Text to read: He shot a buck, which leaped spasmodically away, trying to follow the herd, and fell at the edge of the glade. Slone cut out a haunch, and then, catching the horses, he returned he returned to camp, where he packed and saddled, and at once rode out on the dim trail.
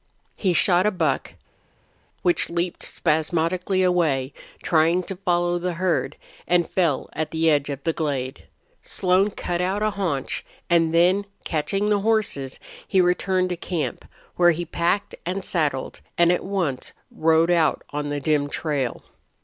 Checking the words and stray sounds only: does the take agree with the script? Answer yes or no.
no